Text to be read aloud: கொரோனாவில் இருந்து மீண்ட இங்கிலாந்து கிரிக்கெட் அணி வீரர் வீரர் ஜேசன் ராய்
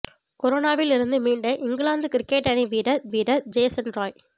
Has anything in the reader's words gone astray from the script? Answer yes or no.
no